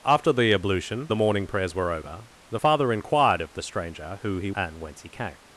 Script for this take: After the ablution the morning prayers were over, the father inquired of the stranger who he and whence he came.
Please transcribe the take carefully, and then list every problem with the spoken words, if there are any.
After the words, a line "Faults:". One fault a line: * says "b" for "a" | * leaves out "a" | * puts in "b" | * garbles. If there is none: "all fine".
After the ablution the morning prayers were over, the father inquired of the stranger who he and whence he came.
Faults:
all fine